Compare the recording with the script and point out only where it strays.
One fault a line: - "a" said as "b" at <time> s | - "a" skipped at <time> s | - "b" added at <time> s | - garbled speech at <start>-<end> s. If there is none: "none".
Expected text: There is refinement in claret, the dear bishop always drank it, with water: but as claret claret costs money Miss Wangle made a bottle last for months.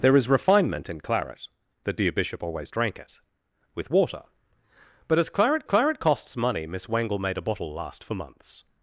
none